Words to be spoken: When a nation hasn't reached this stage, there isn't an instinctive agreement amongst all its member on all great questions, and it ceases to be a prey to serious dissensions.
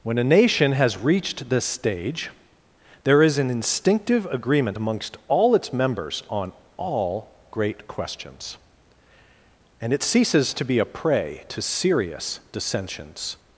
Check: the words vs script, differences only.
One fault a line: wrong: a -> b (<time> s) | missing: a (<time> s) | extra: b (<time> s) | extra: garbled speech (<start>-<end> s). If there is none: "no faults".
wrong: hasn't -> has (0.7 s)
wrong: isn't -> is (3.2 s)
wrong: member -> members (5.7 s)